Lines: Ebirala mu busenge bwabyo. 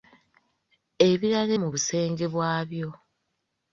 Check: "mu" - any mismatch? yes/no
no